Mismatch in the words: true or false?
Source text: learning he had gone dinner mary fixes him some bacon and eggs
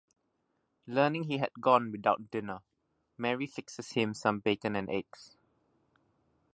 true